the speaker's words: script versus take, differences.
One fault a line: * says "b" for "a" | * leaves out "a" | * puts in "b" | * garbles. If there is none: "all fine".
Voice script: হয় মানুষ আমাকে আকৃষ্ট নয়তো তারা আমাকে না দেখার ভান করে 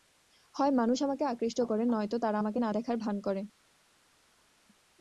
* puts in "করে"